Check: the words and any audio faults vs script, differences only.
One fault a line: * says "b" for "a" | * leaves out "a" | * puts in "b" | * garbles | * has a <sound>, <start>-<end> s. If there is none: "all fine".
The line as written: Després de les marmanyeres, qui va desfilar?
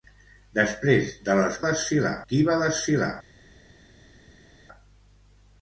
* says "desfilar" for "marmanyeres"